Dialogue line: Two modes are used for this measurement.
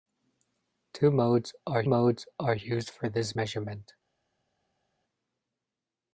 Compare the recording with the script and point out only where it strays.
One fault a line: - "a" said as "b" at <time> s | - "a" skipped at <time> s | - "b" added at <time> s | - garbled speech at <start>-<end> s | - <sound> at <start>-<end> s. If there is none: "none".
- "modes are" added at 1.8 s